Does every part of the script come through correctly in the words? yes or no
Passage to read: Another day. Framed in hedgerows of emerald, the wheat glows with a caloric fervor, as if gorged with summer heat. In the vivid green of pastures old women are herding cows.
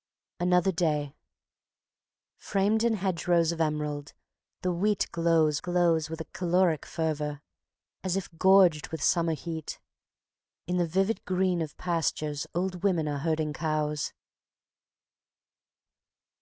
no